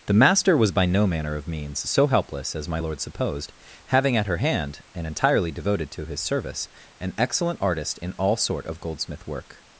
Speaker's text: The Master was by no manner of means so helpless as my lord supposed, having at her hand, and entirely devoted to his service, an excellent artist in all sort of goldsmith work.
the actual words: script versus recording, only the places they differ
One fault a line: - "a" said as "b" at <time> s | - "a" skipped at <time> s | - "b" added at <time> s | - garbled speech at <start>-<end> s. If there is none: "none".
none